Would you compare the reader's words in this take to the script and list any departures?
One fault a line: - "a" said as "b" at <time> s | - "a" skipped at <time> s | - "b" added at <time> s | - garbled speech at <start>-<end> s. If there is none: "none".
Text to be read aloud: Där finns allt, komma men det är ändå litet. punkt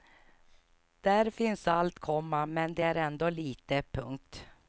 none